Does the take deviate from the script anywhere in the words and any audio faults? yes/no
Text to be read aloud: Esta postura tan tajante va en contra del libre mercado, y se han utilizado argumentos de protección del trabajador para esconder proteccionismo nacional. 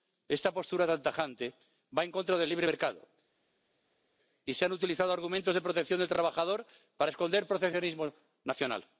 no